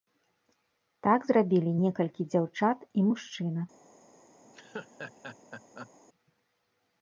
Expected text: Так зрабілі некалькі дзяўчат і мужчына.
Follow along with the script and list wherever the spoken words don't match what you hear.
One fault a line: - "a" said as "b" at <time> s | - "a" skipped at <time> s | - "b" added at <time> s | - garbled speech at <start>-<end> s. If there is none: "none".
none